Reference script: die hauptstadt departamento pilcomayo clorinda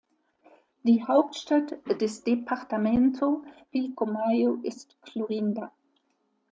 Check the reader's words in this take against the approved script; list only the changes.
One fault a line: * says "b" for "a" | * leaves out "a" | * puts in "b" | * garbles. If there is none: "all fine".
* puts in "des"
* puts in "ist"